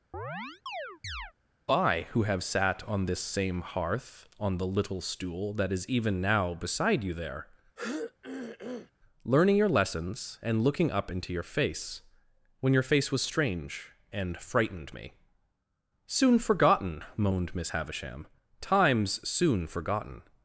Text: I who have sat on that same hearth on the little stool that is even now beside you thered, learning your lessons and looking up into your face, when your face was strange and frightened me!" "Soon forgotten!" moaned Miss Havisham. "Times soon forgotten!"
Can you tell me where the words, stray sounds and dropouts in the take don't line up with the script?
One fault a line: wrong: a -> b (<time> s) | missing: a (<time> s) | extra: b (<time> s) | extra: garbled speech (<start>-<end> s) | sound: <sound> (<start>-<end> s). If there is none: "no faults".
sound: chirp (0.1-1.3 s)
wrong: that -> this (3.0 s)
wrong: thered -> there (7.1 s)
sound: throat clearing (7.8-8.9 s)